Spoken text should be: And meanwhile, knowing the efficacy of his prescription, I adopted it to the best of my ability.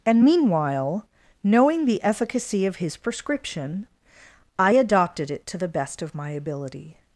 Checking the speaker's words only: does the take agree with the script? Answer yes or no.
yes